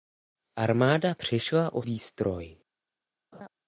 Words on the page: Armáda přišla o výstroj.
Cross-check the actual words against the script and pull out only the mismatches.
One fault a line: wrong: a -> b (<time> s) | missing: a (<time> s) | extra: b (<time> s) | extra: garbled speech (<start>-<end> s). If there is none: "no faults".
no faults